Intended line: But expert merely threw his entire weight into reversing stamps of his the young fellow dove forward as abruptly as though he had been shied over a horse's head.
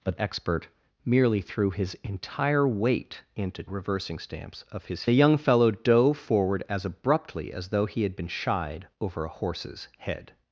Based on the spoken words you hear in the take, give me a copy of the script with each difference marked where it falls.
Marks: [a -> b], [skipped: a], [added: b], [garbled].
But expert merely threw his entire weight into reversing stamps of his the young fellow dove forward as abruptly as though he had been shied over a horse's head.